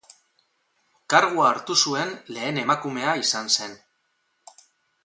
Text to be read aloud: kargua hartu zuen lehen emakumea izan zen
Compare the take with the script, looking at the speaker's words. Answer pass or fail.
pass